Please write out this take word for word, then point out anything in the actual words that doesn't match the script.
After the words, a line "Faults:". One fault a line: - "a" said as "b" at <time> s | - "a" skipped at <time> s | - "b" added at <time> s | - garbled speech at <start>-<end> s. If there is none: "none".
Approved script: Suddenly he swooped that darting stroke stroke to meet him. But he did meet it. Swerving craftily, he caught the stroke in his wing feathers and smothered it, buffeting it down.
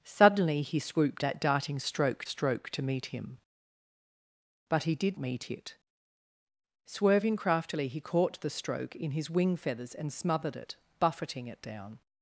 Suddenly he swooped that darting stroke stroke to meet him. But he did meet it. Swerving craftily, he caught the stroke in his wing feathers and smothered it, buffeting it down.
Faults:
none